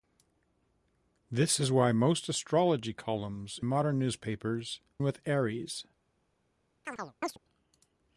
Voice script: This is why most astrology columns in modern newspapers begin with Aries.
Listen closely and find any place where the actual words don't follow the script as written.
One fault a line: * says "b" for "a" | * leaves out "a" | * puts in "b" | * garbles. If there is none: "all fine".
* leaves out "in"
* leaves out "begin"